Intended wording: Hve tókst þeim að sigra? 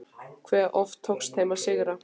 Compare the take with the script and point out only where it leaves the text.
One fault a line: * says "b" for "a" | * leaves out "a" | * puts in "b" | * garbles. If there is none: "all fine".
* puts in "oft"